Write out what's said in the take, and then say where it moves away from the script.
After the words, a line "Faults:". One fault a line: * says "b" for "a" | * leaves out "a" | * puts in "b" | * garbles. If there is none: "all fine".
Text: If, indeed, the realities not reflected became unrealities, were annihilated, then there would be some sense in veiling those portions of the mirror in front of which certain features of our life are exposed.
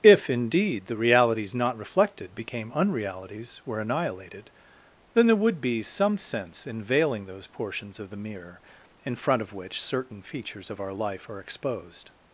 If, indeed, the realities not reflected became unrealities, were annihilated, then there would be some sense in veiling those portions of the mirror in front of which certain features of our life are exposed.
Faults:
all fine